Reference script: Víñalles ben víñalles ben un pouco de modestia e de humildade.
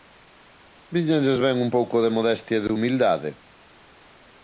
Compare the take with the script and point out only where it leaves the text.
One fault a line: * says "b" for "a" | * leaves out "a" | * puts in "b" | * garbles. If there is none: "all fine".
* leaves out "víñalles ben"